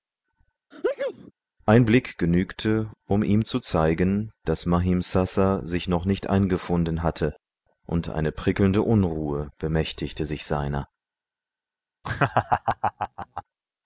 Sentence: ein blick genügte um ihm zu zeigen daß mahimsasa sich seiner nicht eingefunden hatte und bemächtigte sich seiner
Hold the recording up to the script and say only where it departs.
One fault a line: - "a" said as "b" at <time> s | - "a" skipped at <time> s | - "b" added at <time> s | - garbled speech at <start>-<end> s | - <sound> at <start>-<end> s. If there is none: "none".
- sneeze at 0.7-1.3 s
- "seiner" said as "noch" at 5.9 s
- "eine prickelnde unruhe" added at 8.1 s
- laugh at 12.0-13.4 s